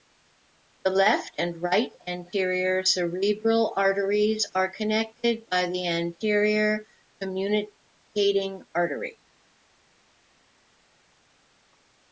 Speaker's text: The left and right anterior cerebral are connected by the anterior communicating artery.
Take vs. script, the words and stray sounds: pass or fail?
fail